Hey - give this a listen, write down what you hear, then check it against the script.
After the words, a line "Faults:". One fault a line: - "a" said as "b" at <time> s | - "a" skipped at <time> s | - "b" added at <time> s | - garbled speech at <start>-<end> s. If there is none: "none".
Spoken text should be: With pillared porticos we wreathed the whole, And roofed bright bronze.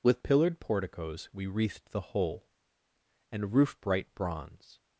With pillared porticos we wreathed the whole, And roofed bright bronze.
Faults:
none